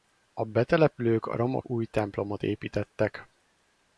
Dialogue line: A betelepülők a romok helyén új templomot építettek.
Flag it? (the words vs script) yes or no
yes